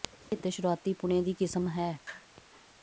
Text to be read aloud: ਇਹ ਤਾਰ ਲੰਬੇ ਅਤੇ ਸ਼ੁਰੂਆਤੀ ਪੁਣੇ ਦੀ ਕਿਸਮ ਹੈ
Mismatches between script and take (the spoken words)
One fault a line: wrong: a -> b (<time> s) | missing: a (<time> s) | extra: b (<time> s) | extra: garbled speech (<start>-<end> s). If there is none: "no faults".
missing: ਤਾਰ ਲੰਬੇ (0.4 s)